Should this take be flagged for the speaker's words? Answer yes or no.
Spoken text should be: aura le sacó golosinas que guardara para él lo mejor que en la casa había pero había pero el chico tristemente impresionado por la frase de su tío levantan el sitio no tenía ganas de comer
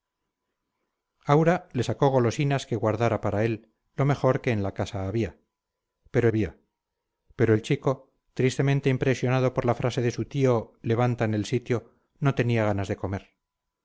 no